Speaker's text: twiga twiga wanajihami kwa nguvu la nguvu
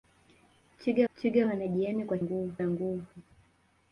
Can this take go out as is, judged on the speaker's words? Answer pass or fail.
pass